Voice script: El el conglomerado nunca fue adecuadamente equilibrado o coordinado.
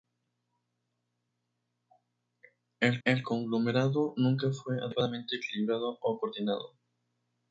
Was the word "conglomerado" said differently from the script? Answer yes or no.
no